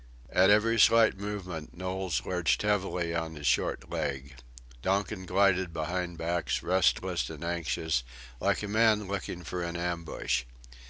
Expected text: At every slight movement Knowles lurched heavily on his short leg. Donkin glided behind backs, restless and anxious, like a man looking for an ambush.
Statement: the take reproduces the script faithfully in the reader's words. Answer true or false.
true